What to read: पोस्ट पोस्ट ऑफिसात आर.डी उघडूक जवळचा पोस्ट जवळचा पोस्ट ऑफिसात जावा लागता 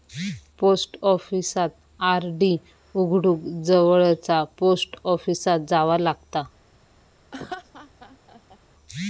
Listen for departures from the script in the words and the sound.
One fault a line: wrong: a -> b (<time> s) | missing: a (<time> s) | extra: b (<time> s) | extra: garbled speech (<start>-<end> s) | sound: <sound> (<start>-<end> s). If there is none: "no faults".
missing: पोस्ट (1.0 s)
missing: जवळचा पोस्ट (5.0 s)
sound: laugh (7.3-8.6 s)